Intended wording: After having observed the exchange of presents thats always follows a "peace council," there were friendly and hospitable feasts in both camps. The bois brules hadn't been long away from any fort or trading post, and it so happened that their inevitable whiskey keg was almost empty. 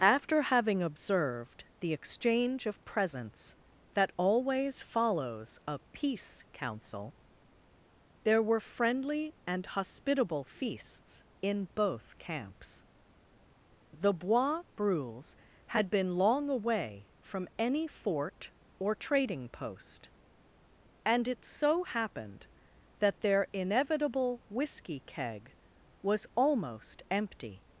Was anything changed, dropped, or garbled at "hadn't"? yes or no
yes